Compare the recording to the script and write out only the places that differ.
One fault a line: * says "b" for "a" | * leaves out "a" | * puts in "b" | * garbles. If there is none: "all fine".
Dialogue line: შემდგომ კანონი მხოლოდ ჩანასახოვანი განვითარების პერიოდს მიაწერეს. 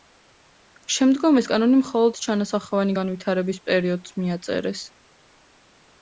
* puts in "ეს"